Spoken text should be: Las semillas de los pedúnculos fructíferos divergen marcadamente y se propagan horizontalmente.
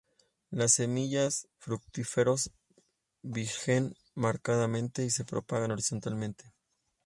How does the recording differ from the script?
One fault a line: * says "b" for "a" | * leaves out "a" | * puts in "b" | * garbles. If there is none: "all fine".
* leaves out "de los pedúnculos"